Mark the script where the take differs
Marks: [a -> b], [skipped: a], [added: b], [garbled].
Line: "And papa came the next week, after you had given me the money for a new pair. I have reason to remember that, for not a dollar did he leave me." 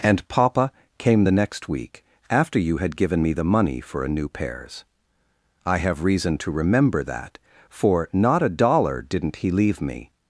"And papa came the next week, after you had given me the money for a new [pair. -> pairs] I have reason to remember that, for not a dollar [did -> didn't] he leave me."